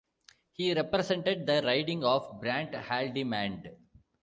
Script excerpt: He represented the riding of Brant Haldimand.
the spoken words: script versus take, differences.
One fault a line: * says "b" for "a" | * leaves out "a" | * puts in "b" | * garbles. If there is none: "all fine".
all fine